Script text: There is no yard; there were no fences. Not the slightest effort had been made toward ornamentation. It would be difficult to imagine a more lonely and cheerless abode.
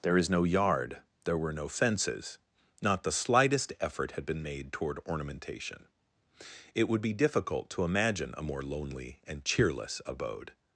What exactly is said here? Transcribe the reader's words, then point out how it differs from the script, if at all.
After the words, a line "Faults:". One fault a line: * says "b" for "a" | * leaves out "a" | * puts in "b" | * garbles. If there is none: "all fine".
There is no yard; there were no fences. Not the slightest effort had been made toward ornamentation. It would be difficult to imagine a more lonely and cheerless abode.
Faults:
all fine